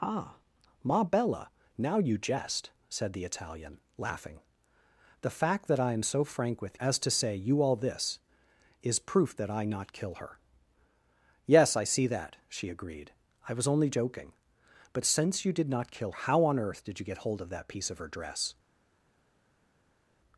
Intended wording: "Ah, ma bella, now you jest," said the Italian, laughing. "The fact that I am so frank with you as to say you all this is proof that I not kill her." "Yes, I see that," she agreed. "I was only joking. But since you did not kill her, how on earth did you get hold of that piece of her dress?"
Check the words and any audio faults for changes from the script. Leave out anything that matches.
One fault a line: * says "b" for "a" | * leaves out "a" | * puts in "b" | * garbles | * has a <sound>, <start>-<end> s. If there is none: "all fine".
* leaves out "you"
* leaves out "her"